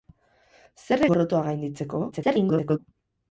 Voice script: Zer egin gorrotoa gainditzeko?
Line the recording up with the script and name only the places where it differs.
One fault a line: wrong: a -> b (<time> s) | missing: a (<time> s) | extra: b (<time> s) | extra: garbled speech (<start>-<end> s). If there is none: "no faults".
missing: egin (1.1 s)
extra: garbled speech (2.1-2.8 s)